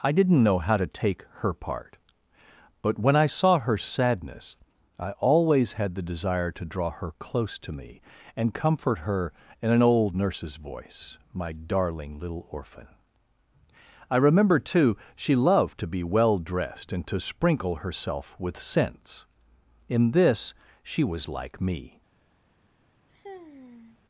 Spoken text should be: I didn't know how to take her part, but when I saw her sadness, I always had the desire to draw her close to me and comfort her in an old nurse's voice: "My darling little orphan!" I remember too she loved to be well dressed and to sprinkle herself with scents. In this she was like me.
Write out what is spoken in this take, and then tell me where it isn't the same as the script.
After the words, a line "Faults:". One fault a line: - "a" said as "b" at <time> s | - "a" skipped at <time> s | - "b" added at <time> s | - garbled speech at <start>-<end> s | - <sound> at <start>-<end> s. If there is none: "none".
I didn't know how to take her part, but when I saw her sadness, I always had the desire to draw her close to me and comfort her in an old nurse's voice: "My darling little orphan!" I remember too she loved to be well dressed and to sprinkle herself with scents. In this she was like me.
Faults:
- sigh at 23.1-24.0 s